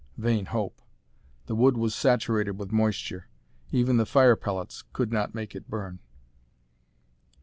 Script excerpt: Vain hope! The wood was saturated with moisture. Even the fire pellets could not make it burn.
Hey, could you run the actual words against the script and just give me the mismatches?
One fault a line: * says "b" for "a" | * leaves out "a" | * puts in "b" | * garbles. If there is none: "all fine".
all fine